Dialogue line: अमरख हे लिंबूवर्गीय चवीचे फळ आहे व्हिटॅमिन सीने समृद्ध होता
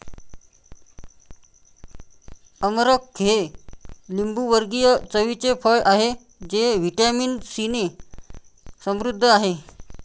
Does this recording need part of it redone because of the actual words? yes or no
yes